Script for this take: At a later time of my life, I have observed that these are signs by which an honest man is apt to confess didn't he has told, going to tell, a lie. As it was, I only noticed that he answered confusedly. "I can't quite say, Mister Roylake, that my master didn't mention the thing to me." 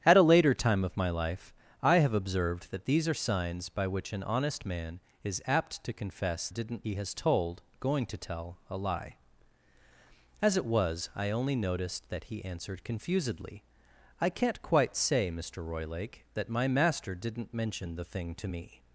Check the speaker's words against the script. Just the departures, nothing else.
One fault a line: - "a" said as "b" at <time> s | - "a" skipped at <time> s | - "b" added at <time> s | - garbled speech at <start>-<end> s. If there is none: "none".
none